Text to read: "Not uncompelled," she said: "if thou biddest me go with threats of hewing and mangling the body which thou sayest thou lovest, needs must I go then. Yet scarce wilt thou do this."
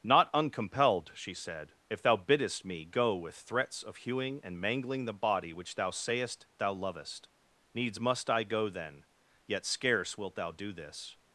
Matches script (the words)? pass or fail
pass